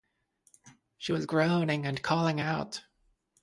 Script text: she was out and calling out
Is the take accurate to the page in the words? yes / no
no